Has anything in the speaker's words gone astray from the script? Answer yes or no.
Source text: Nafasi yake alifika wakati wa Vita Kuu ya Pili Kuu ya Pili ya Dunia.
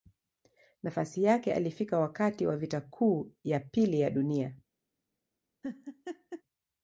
yes